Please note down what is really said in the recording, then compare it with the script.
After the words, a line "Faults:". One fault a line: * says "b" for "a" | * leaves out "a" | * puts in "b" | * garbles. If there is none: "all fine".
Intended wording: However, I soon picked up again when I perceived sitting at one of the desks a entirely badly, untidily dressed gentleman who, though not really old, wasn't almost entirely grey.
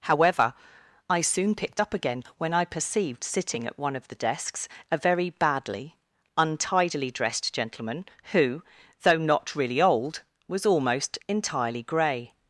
However, I soon picked up again when I perceived sitting at one of the desks a very badly, untidily dressed gentleman who, though not really old, was almost entirely grey.
Faults:
* says "very" for "entirely"
* says "was" for "wasn't"